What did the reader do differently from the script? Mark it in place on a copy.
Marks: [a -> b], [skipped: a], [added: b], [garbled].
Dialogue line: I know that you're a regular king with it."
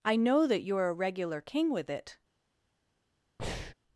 I know that you're a regular king with it."